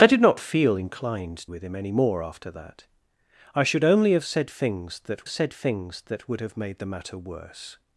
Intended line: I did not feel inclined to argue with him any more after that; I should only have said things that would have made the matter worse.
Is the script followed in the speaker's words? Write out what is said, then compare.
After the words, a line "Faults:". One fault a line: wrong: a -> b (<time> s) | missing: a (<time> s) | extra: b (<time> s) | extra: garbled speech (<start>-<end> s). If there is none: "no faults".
I did not feel inclined with him any more after that; I should only have said things that said things that would have made the matter worse.
Faults:
missing: to argue (1.5 s)
extra: said things that (5.3 s)